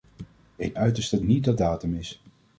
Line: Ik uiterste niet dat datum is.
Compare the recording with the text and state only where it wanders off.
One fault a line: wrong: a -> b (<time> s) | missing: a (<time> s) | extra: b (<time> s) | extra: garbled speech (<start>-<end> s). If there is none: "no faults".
no faults